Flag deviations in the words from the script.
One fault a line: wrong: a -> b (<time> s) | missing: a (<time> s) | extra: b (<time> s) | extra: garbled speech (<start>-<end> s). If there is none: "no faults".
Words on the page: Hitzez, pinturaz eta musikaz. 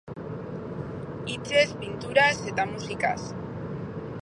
no faults